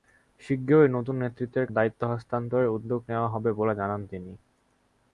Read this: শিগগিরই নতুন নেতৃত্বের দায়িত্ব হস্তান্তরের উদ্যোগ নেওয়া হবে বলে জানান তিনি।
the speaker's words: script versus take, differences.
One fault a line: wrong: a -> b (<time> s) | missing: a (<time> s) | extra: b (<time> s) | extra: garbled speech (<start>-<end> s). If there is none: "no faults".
no faults